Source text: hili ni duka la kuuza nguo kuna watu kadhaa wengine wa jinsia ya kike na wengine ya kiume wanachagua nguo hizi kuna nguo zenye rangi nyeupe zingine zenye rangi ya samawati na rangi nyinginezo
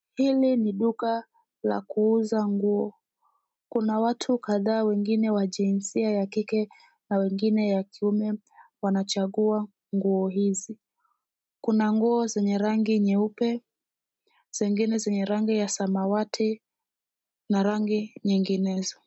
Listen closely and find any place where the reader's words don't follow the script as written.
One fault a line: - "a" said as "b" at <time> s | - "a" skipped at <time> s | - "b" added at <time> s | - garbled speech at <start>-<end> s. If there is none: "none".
none